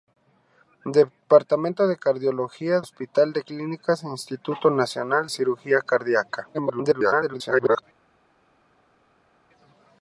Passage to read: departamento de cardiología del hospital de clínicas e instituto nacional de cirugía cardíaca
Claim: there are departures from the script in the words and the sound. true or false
true